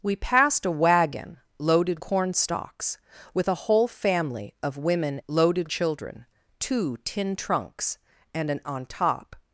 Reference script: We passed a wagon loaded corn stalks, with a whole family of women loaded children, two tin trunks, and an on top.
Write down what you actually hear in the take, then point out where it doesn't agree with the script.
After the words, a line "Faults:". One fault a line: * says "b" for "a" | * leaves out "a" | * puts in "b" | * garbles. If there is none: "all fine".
We passed a wagon loaded corn stalks, with a whole family of women loaded children, two tin trunks, and an on top.
Faults:
all fine